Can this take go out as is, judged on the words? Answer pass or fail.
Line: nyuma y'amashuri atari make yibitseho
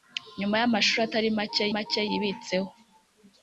fail